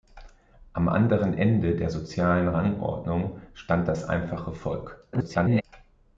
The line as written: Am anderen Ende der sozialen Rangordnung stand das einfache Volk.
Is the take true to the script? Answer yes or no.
no